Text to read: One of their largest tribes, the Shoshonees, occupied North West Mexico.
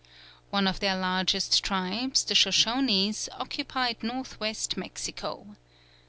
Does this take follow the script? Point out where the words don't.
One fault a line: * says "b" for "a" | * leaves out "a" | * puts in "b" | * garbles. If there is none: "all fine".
all fine